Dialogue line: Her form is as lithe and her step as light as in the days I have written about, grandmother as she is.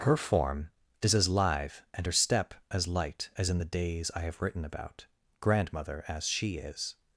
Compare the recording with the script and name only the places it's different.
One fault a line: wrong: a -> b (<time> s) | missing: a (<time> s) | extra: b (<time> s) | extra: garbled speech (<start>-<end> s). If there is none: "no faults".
no faults